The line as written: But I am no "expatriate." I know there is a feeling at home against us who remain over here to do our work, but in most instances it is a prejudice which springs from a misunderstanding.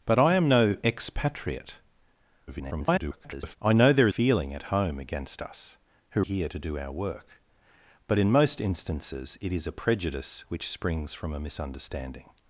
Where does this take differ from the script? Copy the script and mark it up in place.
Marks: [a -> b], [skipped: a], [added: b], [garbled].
But I am no "expatriate." [garbled] I know there [skipped: is a] feeling at home against us who [skipped: remain over] here to do our work, but in most instances it is a prejudice which springs from a misunderstanding.